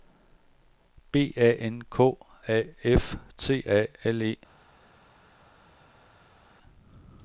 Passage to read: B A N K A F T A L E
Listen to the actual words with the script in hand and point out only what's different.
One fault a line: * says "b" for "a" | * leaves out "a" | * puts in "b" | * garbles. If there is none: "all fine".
all fine